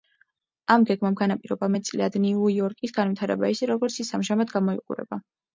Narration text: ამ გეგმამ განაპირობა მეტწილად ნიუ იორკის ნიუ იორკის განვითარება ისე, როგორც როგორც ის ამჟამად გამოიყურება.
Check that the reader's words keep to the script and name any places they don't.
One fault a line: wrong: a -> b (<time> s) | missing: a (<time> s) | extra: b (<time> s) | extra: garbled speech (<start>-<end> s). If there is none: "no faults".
missing: ნიუ იორკის (3.0 s)
missing: როგორც (4.0 s)